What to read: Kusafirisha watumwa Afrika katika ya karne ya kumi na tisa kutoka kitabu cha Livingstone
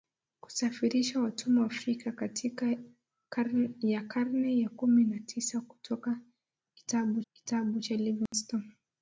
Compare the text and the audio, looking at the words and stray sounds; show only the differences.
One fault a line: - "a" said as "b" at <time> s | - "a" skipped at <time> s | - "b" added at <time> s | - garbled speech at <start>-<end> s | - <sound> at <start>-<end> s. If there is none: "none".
- "kitabu" added at 7.3 s
- dropout at 8.3-8.3 s